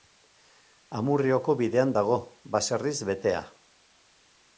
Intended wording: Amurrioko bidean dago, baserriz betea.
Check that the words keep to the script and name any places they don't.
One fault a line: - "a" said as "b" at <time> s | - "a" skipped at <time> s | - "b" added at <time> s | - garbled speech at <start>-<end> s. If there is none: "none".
none